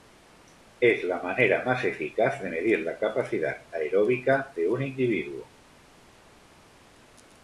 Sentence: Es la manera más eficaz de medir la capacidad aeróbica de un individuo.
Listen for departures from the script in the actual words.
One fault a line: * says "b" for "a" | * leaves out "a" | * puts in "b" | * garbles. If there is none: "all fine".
all fine